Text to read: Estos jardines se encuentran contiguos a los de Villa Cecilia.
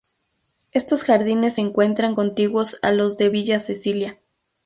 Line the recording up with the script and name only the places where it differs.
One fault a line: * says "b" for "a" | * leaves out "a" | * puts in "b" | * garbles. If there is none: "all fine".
all fine